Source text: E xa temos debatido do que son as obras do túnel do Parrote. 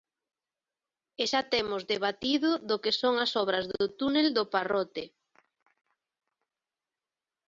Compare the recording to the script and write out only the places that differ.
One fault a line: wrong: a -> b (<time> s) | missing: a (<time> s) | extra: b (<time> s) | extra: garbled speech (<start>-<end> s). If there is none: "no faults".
no faults